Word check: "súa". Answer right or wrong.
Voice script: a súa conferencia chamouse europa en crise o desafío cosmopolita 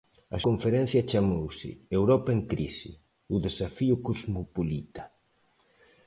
wrong